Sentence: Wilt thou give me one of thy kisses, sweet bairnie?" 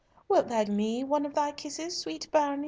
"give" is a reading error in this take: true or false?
true